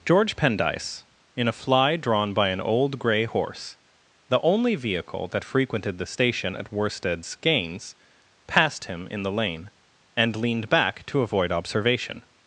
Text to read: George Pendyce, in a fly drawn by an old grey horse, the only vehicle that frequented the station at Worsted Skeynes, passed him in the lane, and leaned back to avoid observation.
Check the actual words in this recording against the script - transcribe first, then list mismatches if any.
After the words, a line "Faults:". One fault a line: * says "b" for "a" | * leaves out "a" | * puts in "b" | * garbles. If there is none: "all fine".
George Pendyce, in a fly drawn by an old grey horse, the only vehicle that frequented the station at Worsted Skeynes, passed him in the lane, and leaned back to avoid observation.
Faults:
all fine